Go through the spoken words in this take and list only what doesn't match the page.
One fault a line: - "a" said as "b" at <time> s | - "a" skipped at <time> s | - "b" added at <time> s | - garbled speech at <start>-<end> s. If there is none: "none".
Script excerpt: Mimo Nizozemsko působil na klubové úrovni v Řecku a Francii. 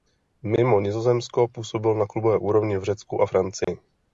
none